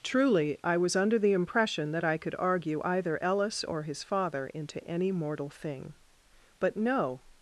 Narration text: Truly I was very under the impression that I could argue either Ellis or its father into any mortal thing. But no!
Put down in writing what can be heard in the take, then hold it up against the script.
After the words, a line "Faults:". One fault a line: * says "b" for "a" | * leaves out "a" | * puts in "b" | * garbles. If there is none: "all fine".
Truly I was under the impression that I could argue either Ellis or his father into any mortal thing. But no!
Faults:
* leaves out "very"
* says "his" for "its"